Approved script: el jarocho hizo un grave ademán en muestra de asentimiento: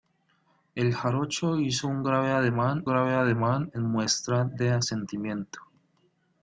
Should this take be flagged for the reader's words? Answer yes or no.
yes